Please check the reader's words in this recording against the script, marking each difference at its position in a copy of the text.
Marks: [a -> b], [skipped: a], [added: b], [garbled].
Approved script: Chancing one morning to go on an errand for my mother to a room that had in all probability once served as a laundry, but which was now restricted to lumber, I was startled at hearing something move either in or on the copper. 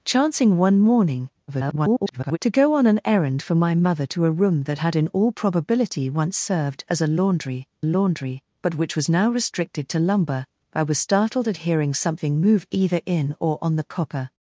Chancing one morning [garbled] to go on an errand for my mother to a room that had in all probability once served as a laundry, [added: laundry] but which was now restricted to lumber, I was startled at hearing something move either in or on the copper.